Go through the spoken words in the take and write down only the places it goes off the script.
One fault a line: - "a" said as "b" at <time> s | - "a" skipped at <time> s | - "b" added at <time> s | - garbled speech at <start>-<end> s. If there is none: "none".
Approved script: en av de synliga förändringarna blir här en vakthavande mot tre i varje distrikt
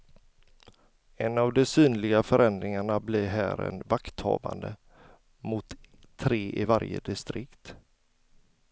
none